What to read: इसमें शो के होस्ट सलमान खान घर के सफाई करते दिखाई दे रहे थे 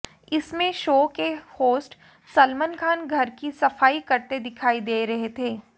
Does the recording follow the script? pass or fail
fail